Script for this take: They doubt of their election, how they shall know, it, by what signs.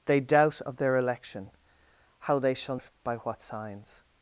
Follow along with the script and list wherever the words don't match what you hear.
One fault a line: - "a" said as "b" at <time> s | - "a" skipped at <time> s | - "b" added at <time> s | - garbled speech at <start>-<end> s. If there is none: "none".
- "know" skipped at 2.8 s